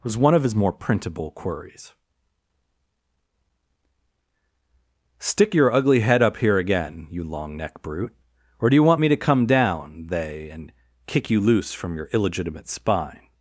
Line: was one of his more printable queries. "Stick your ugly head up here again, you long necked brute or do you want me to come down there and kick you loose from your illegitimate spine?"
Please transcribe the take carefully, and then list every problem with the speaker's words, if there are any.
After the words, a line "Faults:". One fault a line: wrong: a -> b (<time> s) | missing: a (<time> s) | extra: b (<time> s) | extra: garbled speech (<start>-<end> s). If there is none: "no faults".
was one of his more printable queries. "Stick your ugly head up here again, you long neck brute or do you want me to come down they and kick you loose from your illegitimate spine?"
Faults:
wrong: necked -> neck (7.6 s)
wrong: there -> they (10.1 s)